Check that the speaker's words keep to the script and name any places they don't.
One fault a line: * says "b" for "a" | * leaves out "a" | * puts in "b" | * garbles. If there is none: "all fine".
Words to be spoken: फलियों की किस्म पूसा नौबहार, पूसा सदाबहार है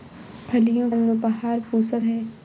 * leaves out "की किस्म पूसा"
* leaves out "सदाबहार"